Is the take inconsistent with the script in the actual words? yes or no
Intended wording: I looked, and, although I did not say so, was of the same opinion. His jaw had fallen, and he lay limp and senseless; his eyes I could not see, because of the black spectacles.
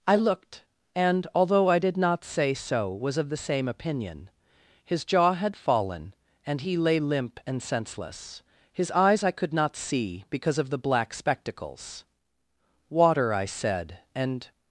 yes